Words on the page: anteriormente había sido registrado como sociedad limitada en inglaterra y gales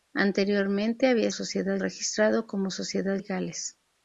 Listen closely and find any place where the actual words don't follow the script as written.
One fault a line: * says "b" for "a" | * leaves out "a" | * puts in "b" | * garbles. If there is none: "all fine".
* says "sociedad" for "sido"
* leaves out "limitada en inglaterra"